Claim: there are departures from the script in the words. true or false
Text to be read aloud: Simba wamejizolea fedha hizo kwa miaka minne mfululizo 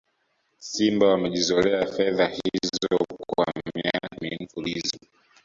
false